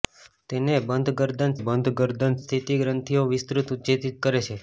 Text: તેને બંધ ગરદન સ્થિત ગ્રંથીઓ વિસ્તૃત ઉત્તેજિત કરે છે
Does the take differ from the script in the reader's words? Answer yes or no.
yes